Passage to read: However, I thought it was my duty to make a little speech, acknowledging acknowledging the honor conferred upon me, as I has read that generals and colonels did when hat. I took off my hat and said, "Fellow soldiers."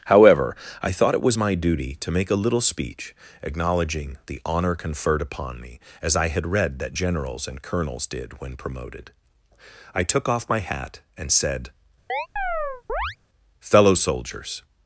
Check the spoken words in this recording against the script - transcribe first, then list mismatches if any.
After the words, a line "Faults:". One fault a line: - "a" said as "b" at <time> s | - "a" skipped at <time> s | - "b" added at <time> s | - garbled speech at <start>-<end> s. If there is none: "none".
However, I thought it was my duty to make a little speech, acknowledging the honor conferred upon me, as I had read that generals and colonels did when promoted. I took off my hat and said, "Fellow soldiers."
Faults:
- "acknowledging" skipped at 4.2 s
- "has" said as "had" at 6.3 s
- "hat" said as "promoted" at 8.6 s